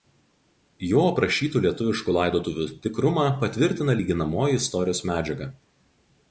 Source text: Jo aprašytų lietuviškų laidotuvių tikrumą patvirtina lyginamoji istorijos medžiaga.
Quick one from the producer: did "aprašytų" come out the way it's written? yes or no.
yes